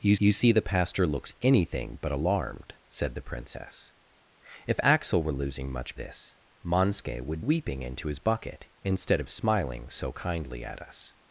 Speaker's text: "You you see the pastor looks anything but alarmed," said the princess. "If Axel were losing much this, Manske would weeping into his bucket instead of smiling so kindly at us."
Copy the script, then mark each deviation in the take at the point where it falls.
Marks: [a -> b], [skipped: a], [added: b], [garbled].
"You you see the pastor looks anything but alarmed," said the princess. "If Axel were losing much this, Manske would weeping into his bucket instead of smiling so kindly at us."